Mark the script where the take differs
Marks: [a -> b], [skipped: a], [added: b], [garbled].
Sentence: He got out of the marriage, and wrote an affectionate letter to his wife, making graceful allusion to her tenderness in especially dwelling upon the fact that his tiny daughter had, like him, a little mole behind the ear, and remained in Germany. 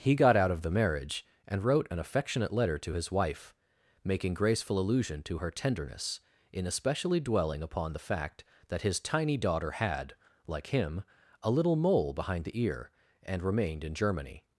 He got out of the marriage, and wrote an affectionate letter to his wife, making graceful allusion to her tenderness in especially dwelling upon the fact that his tiny daughter had, like him, a little mole behind the ear, and remained in Germany.